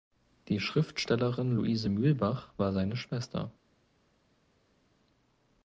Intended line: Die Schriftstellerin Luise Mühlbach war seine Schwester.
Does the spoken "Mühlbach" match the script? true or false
true